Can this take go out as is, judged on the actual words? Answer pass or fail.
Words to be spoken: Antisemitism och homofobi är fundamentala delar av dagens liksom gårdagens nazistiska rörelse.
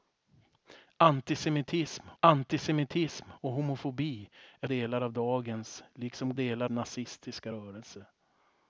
fail